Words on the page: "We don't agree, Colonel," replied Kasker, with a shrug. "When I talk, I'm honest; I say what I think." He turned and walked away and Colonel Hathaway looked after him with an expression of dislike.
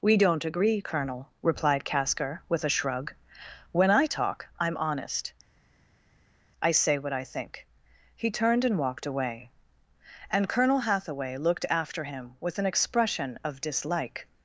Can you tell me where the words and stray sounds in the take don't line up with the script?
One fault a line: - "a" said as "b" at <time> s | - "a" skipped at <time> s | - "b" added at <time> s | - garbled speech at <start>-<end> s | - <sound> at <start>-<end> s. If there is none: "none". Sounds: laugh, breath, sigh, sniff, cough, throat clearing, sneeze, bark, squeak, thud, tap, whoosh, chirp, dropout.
none